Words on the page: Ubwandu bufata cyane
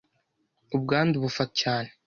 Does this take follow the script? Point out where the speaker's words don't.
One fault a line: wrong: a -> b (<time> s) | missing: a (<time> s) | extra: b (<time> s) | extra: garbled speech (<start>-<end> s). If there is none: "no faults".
no faults